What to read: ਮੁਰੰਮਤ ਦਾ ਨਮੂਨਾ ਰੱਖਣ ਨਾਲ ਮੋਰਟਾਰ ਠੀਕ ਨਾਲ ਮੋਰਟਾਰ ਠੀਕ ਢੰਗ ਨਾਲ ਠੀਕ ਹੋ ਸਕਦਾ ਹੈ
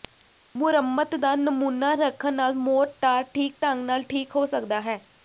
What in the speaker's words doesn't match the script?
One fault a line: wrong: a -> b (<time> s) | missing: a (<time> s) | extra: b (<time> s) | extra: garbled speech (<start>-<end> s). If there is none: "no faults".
missing: ਨਾਲ ਮੋਰਟਾਰ ਠੀਕ (3.6 s)